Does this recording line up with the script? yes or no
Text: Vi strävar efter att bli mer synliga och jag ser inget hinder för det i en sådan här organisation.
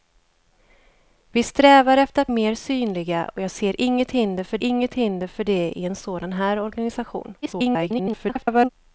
no